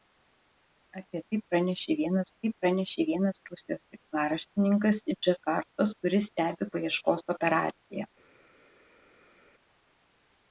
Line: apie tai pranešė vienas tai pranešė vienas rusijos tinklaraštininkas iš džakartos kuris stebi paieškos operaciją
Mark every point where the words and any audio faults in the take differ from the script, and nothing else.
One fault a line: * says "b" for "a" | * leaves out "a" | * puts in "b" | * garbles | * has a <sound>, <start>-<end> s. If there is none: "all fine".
all fine